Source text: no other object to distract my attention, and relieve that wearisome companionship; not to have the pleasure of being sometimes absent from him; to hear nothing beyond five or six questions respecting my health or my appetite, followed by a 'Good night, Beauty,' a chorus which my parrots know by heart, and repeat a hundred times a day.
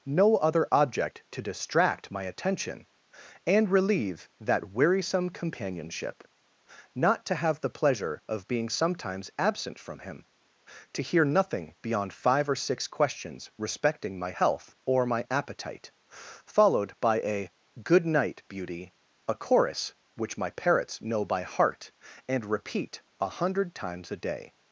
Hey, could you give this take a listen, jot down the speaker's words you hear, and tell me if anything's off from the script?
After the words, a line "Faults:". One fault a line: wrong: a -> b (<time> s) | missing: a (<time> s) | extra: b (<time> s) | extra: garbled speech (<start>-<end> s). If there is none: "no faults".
no other object to distract my attention, and relieve that wearisome companionship; not to have the pleasure of being sometimes absent from him; to hear nothing beyond five or six questions respecting my health or my appetite, followed by a 'Good night, Beauty,' a chorus which my parrots know by heart, and repeat a hundred times a day.
Faults:
no faults